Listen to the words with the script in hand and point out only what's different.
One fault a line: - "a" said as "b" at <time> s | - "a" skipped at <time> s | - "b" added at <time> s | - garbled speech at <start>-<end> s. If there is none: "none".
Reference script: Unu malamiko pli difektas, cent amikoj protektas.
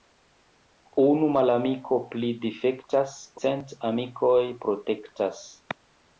none